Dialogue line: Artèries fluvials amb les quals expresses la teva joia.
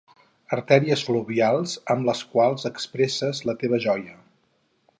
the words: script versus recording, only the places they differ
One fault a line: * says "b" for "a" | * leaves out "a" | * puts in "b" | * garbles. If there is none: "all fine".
all fine